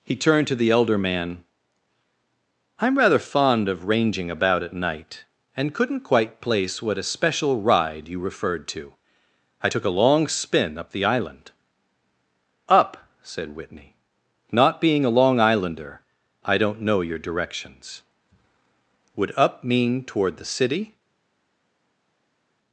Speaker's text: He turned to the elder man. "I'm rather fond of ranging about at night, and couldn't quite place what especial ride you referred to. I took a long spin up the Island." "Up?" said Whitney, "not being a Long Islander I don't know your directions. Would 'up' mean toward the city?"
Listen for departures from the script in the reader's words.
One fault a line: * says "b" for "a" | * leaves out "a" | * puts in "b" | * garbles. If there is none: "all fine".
all fine